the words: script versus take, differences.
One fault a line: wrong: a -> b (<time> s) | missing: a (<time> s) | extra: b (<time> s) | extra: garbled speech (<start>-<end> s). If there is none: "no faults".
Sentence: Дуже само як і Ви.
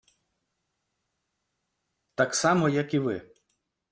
wrong: Дуже -> Так (2.1 s)